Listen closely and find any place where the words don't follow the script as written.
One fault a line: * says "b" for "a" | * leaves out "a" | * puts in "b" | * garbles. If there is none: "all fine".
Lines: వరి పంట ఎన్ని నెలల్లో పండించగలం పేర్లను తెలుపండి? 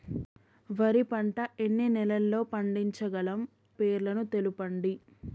all fine